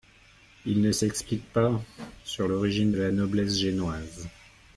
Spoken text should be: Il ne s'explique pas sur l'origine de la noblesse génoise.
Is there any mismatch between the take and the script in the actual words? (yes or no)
no